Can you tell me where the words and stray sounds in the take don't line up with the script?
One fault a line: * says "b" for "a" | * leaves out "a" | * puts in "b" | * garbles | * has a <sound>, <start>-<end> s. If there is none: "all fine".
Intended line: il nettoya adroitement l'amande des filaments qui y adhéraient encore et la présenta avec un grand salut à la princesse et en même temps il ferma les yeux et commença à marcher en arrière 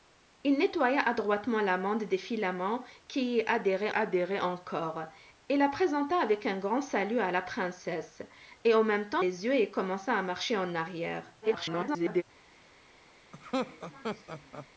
* puts in "adhéraient"
* leaves out "il ferma"
* garbles
* has a laugh, 13.3-14.7 s